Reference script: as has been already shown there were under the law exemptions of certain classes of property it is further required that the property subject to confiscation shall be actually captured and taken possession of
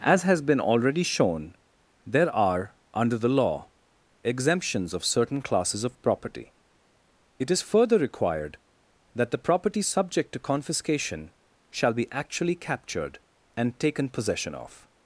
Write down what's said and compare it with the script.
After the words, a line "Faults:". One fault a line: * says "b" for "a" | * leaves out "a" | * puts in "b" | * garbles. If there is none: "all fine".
as has been already shown there are under the law exemptions of certain classes of property it is further required that the property subject to confiscation shall be actually captured and taken possession of
Faults:
* says "are" for "were"